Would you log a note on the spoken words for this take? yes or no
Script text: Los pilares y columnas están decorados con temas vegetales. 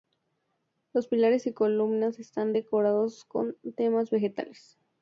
no